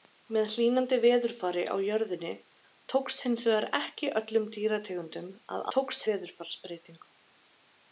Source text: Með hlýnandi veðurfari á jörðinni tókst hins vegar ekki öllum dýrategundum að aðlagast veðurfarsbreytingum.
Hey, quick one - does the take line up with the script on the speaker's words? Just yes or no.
no